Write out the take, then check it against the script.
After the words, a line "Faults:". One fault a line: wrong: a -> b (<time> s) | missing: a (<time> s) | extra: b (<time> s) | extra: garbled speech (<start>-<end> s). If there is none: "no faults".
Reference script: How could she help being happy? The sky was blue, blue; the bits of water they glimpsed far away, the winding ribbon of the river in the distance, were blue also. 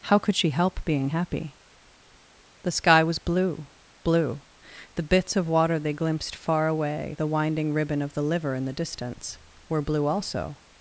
How could she help being happy? The sky was blue, blue; the bits of water they glimpsed far away, the winding ribbon of the liver in the distance, were blue also.
Faults:
wrong: river -> liver (8.2 s)